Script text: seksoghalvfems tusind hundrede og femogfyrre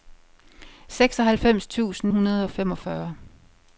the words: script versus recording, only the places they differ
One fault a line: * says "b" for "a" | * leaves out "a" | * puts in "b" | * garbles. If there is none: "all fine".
all fine